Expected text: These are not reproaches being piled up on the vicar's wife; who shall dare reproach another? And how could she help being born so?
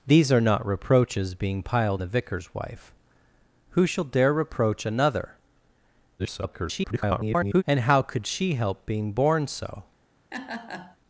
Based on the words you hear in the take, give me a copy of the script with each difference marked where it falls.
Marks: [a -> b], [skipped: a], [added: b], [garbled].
These are not reproaches being piled [skipped: up on] the vicar's wife; who shall dare reproach another? [garbled] And how could she help being born so?